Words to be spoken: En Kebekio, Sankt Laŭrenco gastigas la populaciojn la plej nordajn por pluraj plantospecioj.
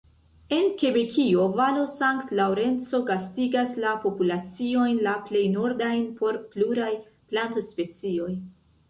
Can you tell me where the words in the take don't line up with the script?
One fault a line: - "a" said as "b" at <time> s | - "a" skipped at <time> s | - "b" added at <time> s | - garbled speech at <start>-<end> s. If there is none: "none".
- "valo" added at 1.6 s